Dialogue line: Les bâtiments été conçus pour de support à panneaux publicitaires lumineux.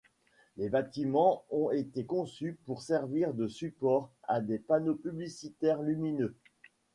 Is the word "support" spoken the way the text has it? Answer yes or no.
yes